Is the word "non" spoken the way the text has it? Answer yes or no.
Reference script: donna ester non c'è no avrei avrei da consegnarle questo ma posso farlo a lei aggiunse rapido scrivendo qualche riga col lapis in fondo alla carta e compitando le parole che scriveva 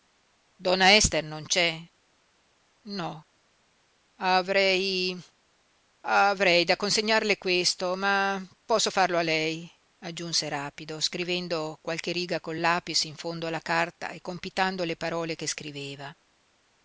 yes